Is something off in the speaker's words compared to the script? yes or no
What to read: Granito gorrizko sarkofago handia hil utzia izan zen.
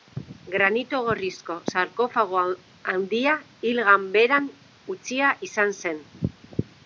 yes